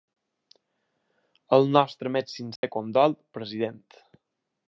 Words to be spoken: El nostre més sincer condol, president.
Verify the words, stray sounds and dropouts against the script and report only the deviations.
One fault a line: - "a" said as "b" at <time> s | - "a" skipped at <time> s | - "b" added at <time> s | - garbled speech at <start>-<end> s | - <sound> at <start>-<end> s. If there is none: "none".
- dropout at 2.6-2.6 s